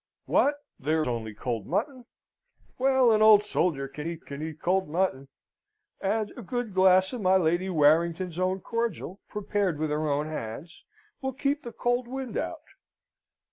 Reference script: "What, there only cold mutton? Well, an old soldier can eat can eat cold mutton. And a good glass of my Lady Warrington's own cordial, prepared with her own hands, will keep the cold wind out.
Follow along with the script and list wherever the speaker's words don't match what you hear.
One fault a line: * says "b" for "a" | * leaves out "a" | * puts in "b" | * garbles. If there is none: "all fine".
all fine